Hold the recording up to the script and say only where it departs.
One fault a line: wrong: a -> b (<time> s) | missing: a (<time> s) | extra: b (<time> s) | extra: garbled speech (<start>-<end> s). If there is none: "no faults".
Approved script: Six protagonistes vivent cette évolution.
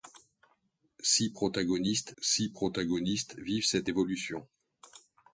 extra: six protagonistes (2.2 s)